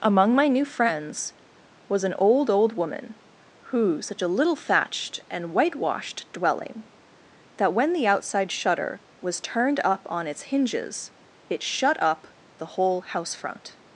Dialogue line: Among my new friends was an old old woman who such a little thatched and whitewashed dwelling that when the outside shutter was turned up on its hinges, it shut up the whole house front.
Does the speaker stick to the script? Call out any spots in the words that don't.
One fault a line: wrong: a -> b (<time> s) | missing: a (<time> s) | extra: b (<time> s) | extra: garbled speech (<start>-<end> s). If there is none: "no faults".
no faults